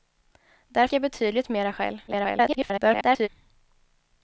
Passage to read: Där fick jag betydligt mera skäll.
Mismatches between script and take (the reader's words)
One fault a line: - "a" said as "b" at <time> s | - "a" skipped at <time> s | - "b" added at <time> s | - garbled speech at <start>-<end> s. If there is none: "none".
- "fick" skipped at 0.9 s
- garbled speech at 2.1-3.3 s